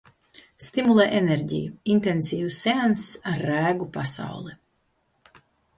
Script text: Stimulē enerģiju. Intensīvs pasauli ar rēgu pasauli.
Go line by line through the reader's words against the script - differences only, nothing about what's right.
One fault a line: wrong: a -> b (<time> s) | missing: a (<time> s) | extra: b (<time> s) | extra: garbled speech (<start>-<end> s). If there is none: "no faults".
wrong: pasauli -> seanss (2.6 s)